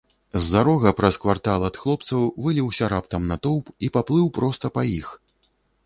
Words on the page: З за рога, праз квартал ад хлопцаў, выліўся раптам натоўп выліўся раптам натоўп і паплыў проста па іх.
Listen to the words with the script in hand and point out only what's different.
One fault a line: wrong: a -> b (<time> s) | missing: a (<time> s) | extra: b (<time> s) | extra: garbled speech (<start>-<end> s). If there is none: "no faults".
missing: выліўся раптам натоўп (3.6 s)